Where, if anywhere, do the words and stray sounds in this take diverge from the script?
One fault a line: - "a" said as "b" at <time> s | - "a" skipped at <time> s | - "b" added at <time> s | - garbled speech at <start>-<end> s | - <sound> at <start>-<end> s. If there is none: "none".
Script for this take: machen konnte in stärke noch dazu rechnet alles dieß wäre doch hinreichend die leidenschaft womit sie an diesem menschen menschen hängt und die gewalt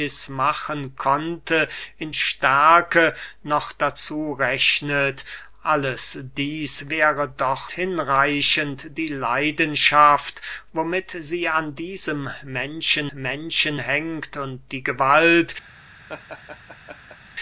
- laugh at 16.1-17.2 s